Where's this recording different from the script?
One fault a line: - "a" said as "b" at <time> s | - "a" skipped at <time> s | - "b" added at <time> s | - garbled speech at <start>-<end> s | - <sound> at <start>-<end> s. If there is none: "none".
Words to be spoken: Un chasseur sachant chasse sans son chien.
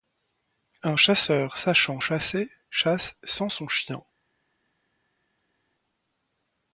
- "chasser" added at 2.0 s